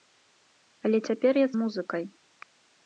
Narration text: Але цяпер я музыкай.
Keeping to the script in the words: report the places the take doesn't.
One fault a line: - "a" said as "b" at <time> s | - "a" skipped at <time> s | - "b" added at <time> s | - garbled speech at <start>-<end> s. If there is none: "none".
none